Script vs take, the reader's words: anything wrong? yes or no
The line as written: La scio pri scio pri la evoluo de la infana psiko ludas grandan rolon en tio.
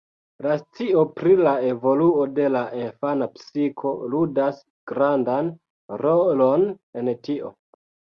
yes